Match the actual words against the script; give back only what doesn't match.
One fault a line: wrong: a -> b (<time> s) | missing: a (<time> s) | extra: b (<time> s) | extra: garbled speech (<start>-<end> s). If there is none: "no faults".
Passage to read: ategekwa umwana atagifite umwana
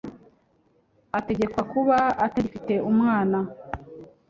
wrong: umwana -> kuba (1.7 s)